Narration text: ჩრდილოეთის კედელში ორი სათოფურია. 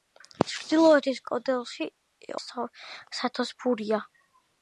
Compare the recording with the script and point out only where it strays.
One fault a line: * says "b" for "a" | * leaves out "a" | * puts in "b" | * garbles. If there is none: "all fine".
* leaves out "ორი"